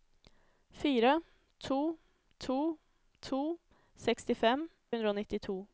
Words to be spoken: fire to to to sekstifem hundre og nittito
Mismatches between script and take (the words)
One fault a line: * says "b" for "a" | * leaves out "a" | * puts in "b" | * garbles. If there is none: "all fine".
all fine